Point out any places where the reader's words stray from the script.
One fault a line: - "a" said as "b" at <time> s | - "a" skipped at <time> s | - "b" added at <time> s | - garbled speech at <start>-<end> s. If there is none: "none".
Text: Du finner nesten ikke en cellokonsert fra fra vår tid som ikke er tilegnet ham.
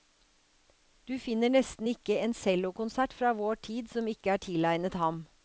- "fra" skipped at 3.3 s